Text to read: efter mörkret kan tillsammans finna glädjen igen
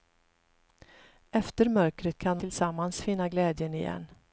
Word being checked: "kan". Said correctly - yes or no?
yes